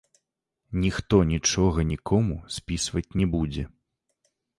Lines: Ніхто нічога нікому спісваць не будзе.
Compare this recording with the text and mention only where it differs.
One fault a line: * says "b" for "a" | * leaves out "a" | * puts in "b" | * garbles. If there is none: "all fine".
all fine